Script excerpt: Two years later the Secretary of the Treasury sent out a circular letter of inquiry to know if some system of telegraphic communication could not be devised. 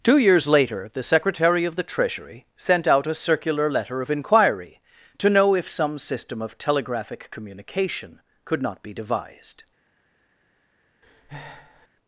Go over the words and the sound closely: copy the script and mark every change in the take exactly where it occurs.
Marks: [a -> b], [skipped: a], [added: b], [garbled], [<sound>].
Two years later the Secretary of the Treasury sent out a circular letter of inquiry to know if some system of telegraphic communication could not be devised. [breath]